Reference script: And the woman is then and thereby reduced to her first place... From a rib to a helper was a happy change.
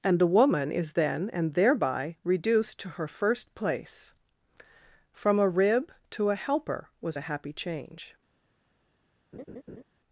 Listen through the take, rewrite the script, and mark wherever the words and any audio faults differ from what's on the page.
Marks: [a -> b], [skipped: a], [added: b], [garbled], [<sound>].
And the woman is then and thereby reduced to her first place... From a rib to a helper was a happy change. [laugh]